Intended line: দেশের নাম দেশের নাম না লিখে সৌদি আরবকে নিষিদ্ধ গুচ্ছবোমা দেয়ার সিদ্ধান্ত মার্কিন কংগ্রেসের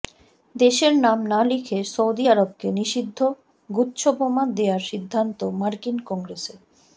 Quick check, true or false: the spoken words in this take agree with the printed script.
false